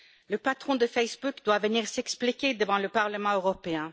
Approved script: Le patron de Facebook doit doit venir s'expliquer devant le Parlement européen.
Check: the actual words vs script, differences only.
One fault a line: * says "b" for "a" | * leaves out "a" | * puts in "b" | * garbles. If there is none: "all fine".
* leaves out "doit"